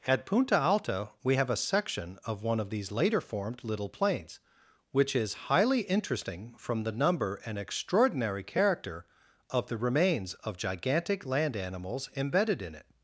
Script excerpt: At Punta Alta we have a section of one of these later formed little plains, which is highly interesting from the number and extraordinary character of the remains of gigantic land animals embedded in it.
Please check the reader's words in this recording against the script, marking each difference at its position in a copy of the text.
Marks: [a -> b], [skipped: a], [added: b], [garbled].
At Punta Alta we have a section of one of these later formed little plains, which is highly interesting from the number and extraordinary character of the remains of gigantic land animals embedded in it.